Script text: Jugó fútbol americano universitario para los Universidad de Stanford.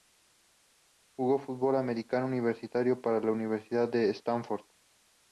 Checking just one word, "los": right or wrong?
wrong